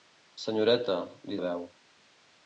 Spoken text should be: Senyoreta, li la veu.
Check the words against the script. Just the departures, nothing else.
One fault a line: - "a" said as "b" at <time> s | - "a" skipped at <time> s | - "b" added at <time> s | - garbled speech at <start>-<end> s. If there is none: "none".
none